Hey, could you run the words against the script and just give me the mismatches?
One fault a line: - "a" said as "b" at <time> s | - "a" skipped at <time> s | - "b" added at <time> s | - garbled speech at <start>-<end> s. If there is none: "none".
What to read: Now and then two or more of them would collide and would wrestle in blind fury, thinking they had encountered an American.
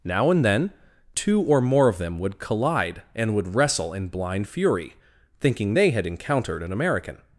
none